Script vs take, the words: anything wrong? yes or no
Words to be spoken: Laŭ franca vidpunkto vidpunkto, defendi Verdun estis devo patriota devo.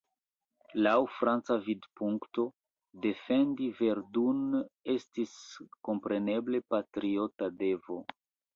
yes